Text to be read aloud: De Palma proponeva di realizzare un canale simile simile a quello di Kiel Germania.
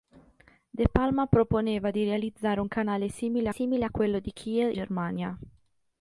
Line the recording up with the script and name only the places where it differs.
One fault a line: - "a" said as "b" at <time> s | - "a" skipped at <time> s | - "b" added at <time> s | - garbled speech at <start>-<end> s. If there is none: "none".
none